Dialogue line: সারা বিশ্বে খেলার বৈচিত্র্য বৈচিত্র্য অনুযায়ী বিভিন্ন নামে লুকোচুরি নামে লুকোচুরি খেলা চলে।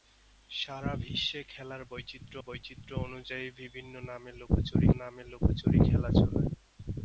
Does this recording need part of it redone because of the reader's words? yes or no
no